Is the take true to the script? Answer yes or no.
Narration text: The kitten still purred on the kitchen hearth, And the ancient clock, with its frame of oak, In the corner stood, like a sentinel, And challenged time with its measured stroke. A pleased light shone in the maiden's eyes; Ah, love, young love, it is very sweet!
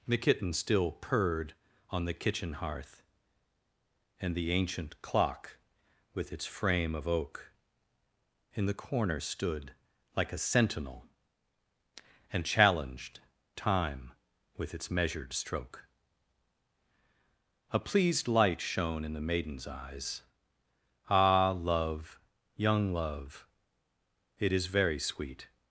yes